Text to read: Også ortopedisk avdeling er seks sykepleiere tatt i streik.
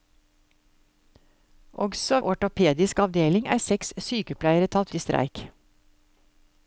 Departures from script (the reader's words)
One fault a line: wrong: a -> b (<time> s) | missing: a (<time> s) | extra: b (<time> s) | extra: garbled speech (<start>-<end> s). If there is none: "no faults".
no faults